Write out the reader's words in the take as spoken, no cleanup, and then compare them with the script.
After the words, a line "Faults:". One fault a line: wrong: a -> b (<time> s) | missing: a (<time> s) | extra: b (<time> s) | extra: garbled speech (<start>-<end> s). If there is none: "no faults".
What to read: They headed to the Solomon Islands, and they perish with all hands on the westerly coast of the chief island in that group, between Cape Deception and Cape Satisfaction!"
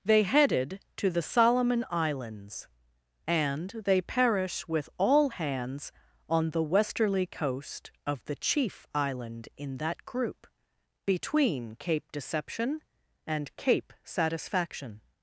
They headed to the Solomon Islands, and they perish with all hands on the westerly coast of the chief island in that group, between Cape Deception and Cape Satisfaction!"
Faults:
no faults